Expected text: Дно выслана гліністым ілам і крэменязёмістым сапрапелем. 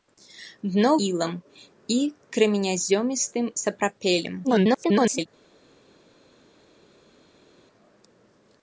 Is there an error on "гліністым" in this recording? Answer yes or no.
yes